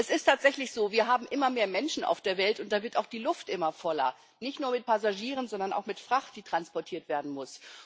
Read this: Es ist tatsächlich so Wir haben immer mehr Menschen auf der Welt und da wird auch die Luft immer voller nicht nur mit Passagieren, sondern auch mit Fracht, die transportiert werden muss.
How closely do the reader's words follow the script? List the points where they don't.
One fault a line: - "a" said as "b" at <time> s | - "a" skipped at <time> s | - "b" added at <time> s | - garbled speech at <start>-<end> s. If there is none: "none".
none